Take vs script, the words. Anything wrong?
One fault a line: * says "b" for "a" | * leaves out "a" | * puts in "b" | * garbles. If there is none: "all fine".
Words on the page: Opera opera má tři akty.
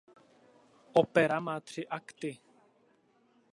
* leaves out "opera"